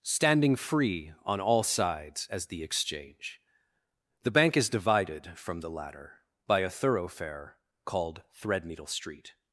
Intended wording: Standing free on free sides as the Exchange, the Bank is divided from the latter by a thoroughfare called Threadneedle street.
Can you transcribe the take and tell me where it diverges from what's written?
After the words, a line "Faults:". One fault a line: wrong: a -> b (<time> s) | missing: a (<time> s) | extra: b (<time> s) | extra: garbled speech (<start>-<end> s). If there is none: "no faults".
Standing free on all sides as the Exchange, the Bank is divided from the latter by a thoroughfare called Threadneedle street.
Faults:
wrong: free -> all (1.4 s)